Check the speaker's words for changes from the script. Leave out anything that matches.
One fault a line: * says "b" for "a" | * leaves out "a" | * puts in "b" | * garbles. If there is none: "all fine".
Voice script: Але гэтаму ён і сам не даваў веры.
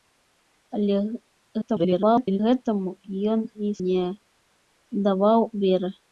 * garbles
* leaves out "сам"